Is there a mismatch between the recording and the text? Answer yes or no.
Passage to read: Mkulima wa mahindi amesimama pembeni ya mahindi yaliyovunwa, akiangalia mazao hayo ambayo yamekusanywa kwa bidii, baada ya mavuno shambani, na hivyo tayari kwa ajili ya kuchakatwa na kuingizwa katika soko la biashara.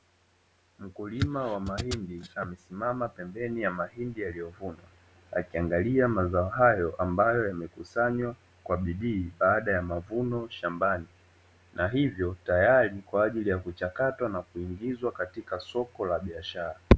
no